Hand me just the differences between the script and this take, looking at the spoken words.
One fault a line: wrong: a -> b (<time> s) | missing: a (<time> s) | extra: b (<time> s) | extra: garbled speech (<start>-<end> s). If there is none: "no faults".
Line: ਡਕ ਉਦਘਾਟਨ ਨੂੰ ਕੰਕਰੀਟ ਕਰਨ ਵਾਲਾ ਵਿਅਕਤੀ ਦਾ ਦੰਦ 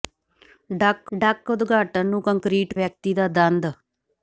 extra: ਡਕ (1.2 s)
missing: ਕਰਨ ਵਾਲਾ (2.7 s)